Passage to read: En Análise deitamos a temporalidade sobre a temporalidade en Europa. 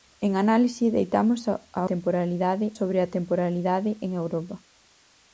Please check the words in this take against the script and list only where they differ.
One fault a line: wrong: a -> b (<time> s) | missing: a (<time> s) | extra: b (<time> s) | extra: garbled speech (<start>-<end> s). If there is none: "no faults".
no faults